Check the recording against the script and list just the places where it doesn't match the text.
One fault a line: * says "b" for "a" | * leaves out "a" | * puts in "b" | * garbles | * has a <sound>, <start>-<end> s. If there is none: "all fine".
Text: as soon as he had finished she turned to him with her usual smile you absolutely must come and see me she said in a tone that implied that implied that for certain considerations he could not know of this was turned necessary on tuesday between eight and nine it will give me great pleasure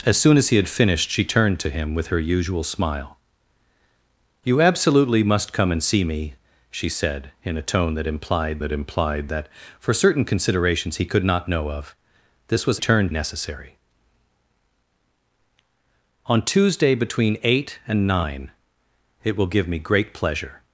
all fine